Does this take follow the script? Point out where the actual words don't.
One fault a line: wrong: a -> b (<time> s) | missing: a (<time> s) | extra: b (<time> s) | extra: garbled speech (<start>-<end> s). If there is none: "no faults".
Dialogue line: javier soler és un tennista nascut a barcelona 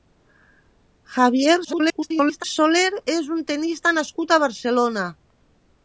extra: garbled speech (1.6-2.4 s)